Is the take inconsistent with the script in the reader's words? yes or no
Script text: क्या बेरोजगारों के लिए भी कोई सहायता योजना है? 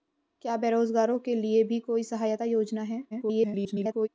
yes